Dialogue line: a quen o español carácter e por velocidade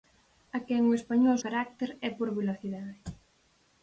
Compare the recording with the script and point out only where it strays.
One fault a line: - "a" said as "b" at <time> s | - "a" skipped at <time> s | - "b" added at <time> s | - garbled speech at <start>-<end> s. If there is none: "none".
none